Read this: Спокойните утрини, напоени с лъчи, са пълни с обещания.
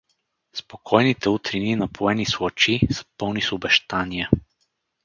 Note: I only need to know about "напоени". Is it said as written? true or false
true